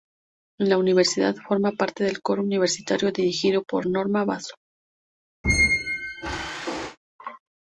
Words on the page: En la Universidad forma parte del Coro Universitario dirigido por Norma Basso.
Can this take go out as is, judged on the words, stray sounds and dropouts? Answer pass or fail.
fail